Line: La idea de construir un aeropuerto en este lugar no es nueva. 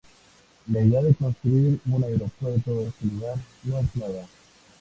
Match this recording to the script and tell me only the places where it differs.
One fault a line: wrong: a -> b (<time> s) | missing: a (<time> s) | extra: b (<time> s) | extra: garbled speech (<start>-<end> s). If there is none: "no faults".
missing: en (2.9 s)